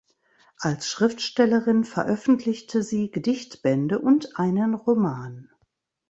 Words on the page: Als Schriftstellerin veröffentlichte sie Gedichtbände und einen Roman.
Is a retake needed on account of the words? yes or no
no